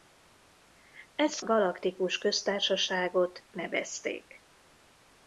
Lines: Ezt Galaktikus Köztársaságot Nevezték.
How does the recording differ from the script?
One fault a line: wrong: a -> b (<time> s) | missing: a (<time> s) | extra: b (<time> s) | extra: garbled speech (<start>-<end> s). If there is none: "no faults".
no faults